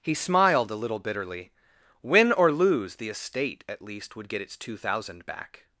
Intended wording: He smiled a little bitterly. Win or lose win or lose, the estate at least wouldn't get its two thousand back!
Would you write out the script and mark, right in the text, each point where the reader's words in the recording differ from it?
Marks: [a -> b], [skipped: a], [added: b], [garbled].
He smiled a little bitterly. Win or lose [skipped: win or lose,] the estate at least [wouldn't -> would] get its two thousand back!